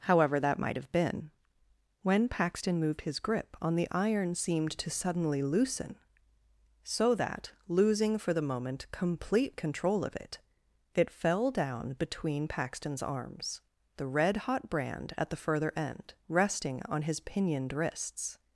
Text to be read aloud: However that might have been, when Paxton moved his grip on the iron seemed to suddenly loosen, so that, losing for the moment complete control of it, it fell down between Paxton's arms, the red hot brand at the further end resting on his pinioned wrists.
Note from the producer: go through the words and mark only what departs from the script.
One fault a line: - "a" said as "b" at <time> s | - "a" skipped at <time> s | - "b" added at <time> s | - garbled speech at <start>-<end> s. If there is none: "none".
none